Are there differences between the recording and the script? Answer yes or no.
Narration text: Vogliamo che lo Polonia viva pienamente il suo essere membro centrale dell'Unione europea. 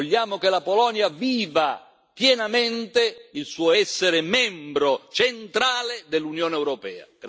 yes